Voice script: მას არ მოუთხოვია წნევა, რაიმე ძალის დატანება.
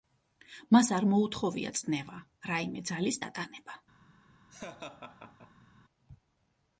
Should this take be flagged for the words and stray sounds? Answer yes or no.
yes